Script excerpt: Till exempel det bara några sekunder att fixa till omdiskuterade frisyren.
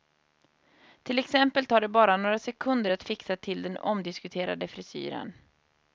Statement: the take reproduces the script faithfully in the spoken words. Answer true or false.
false